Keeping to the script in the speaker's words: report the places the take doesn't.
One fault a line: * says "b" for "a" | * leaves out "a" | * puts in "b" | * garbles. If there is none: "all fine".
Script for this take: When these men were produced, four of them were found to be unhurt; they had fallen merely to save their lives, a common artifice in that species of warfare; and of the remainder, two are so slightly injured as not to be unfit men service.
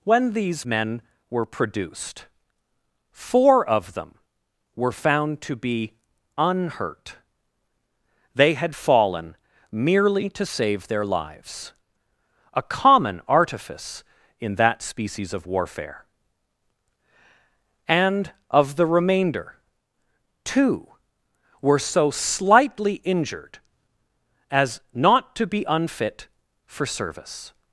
* says "were" for "are"
* says "for" for "men"